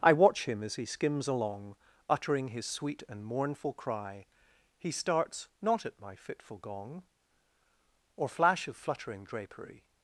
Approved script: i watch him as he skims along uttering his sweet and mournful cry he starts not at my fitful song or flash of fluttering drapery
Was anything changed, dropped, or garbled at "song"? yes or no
yes